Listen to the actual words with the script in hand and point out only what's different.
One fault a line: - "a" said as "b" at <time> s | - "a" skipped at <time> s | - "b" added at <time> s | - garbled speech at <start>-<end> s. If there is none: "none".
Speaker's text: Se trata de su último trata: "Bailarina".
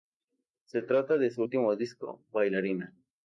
- "trata" said as "disco" at 1.7 s